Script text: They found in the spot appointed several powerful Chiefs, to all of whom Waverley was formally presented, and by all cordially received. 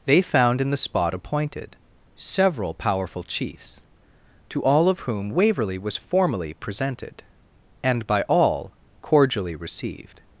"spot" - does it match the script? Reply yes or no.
yes